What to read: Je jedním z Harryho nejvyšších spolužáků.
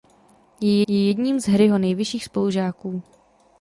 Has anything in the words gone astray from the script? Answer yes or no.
yes